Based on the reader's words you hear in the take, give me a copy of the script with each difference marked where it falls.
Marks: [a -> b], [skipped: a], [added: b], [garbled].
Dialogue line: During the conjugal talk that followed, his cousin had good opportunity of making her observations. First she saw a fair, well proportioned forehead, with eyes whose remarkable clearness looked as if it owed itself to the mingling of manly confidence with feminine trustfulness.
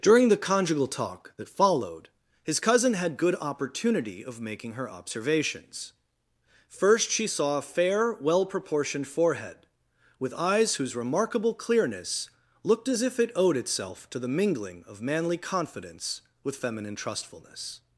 During the conjugal talk that followed, his cousin had good opportunity of making her observations. First she saw a fair, well proportioned forehead, with eyes whose remarkable clearness looked as if it owed itself to the mingling of manly confidence with feminine trustfulness.